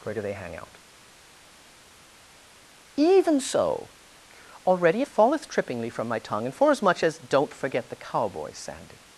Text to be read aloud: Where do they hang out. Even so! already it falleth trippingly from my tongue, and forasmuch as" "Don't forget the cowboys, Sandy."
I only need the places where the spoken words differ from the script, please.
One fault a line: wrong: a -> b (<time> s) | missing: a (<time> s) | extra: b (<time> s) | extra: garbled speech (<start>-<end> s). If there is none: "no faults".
no faults